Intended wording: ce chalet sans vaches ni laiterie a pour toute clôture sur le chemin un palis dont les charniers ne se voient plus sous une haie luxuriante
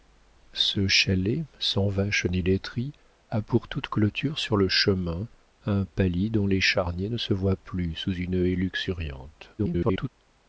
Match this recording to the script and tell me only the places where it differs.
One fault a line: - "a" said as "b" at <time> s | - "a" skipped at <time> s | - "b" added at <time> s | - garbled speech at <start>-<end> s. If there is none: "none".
- garbled speech at 9.6-10.1 s